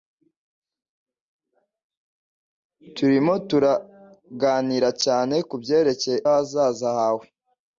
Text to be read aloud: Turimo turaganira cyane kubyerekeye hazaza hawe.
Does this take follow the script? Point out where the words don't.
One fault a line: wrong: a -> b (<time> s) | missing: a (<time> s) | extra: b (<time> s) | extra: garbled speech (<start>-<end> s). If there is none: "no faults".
no faults